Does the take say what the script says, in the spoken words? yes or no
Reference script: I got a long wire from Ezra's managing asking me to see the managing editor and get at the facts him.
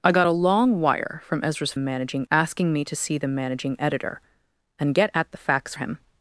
yes